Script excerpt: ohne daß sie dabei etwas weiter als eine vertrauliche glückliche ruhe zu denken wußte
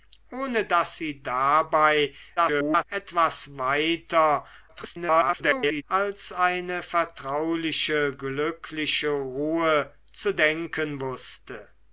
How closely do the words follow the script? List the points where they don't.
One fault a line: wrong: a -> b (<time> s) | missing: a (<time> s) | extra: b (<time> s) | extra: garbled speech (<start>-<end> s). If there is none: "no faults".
extra: garbled speech (2.4-2.8 s)
extra: garbled speech (4.7-5.8 s)